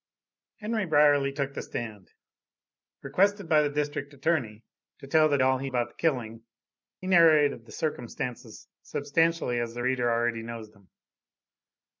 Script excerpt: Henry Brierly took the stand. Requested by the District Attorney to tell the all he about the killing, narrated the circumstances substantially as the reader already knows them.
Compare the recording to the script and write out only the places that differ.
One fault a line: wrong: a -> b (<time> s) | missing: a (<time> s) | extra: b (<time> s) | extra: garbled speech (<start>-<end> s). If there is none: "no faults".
no faults